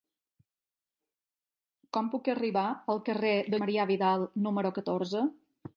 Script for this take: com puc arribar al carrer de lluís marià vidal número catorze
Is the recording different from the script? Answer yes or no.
yes